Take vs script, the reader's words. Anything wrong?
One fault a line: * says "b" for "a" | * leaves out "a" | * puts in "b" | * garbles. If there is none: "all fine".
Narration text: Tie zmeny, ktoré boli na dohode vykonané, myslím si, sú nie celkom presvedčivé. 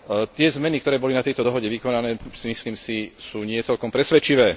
* puts in "tejto"